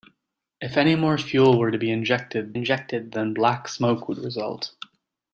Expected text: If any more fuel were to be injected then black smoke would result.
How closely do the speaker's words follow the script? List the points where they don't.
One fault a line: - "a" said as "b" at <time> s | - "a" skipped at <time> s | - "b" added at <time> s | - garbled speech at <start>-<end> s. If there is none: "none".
- "injected" added at 2.5 s